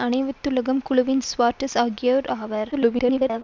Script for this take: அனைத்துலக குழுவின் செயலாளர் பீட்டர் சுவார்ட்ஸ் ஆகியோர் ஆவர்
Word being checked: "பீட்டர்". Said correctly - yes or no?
no